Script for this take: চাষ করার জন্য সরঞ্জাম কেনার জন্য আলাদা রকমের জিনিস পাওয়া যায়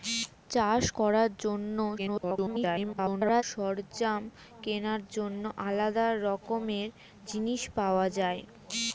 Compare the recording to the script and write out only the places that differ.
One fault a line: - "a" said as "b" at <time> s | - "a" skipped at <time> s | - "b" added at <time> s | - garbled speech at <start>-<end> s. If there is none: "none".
- garbled speech at 2.0-3.4 s